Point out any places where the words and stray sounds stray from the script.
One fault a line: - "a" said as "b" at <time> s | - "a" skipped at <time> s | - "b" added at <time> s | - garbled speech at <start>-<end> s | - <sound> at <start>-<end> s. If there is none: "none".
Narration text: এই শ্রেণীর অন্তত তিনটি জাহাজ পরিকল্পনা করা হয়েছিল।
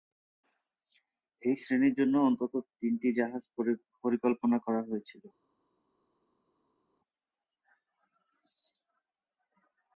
- "জন্য" added at 2.0 s